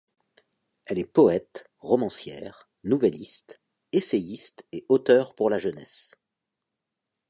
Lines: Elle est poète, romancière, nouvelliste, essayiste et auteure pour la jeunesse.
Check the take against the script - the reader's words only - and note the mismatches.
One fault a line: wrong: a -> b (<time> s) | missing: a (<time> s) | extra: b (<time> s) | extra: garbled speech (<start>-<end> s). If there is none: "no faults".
no faults